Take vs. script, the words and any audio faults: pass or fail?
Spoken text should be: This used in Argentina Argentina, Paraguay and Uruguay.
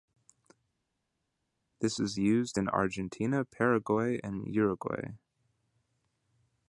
fail